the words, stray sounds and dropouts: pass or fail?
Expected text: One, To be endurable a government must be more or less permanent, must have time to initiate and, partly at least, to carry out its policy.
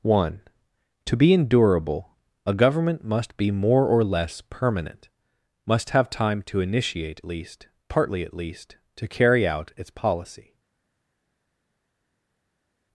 fail